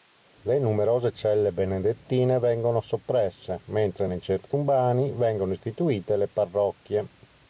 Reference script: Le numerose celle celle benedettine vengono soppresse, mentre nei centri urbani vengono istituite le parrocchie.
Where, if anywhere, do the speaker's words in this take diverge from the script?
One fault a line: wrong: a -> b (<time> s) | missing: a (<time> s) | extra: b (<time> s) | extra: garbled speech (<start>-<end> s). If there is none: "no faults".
missing: celle (1.5 s)